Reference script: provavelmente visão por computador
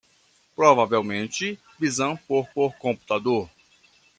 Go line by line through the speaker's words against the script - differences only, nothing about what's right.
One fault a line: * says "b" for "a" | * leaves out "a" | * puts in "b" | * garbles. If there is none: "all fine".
* puts in "por"